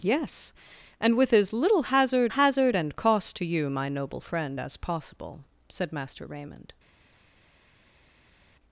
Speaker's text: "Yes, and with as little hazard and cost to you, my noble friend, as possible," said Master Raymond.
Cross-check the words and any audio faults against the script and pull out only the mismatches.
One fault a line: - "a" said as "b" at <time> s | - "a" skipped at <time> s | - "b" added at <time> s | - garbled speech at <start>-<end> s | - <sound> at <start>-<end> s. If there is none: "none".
- "hazard" added at 2.3 s